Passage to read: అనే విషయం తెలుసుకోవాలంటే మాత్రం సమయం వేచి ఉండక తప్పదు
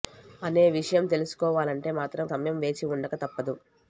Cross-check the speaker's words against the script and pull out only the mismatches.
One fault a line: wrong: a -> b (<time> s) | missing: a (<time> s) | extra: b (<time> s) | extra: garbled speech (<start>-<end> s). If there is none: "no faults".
no faults